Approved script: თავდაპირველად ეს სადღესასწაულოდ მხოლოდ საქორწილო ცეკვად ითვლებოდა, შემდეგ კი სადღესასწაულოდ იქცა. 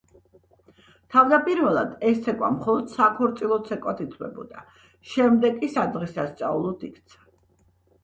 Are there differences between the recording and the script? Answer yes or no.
yes